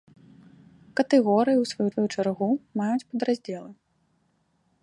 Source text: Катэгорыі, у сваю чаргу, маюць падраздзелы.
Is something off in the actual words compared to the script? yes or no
yes